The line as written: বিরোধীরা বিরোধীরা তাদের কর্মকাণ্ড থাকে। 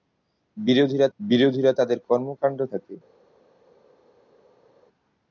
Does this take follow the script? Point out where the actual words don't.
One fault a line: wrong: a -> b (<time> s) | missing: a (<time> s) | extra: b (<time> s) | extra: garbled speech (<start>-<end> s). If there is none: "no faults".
no faults